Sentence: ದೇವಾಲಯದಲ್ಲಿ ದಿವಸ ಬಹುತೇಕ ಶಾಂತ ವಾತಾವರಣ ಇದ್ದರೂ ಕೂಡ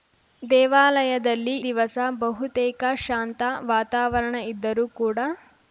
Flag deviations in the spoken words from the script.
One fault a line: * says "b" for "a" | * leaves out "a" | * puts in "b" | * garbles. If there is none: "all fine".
all fine